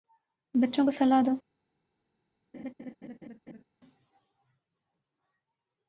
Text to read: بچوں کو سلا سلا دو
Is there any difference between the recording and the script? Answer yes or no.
yes